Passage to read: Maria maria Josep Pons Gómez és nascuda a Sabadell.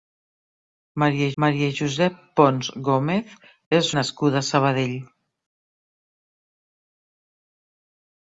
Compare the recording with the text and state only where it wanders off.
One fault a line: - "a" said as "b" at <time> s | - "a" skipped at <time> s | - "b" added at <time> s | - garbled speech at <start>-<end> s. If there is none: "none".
none